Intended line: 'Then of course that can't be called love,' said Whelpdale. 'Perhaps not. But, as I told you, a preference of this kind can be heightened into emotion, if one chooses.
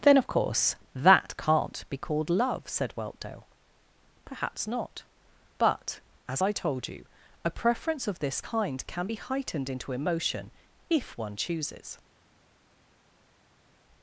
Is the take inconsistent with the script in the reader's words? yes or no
no